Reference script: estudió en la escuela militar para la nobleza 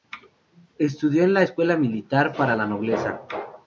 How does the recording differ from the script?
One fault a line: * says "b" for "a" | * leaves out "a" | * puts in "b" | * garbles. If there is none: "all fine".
all fine